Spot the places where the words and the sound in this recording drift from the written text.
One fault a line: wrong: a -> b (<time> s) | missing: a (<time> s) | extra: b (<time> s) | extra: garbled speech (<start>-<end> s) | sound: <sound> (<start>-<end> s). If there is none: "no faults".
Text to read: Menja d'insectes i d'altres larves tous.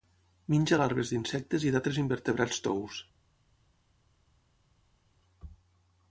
extra: larves (0.8 s)
wrong: larves -> invertebrats (2.0 s)